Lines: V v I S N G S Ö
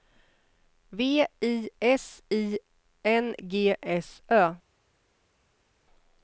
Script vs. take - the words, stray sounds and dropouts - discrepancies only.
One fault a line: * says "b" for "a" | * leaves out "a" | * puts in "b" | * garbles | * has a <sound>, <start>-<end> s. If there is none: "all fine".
* leaves out "v"
* puts in "I"